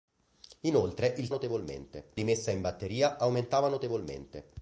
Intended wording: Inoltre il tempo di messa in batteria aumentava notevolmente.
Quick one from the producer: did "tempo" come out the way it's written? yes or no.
no